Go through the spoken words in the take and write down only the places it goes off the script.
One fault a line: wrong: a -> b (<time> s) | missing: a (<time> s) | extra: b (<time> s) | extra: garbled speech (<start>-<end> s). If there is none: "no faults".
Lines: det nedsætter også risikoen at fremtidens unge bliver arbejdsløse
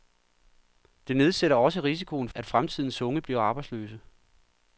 no faults